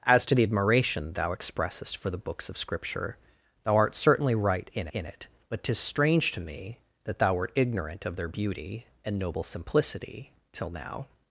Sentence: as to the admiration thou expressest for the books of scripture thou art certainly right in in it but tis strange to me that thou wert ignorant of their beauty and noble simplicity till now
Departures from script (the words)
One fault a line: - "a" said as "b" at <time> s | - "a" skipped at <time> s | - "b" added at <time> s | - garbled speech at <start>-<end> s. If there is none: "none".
none